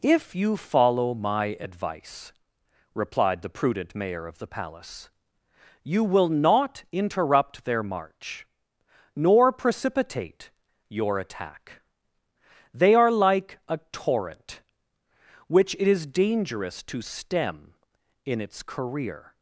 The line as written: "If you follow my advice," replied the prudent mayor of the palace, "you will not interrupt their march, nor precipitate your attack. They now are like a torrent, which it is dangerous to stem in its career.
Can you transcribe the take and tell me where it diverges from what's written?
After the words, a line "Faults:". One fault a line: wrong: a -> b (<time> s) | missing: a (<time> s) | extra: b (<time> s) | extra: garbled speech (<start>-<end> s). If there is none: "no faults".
"If you follow my advice," replied the prudent mayor of the palace, "you will not interrupt their march, nor precipitate your attack. They are like a torrent, which it is dangerous to stem in its career.
Faults:
missing: now (12.9 s)